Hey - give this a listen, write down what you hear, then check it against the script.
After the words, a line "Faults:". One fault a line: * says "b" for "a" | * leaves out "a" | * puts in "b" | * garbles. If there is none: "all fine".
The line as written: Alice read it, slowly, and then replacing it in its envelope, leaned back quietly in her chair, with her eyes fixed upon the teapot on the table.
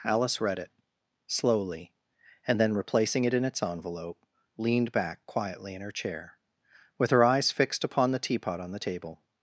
Alice read it, slowly, and then replacing it in its envelope, leaned back quietly in her chair, with her eyes fixed upon the teapot on the table.
Faults:
all fine